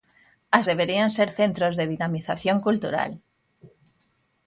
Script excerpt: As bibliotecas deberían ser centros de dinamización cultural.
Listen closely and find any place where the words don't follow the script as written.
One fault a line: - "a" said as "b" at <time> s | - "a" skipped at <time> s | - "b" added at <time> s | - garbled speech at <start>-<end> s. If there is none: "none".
- "bibliotecas" skipped at 0.7 s